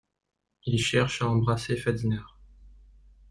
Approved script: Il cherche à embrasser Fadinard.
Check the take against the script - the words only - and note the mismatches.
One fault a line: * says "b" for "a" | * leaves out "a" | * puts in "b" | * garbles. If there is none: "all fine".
all fine